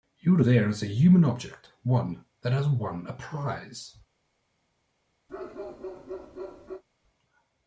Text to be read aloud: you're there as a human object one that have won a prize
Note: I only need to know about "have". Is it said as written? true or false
false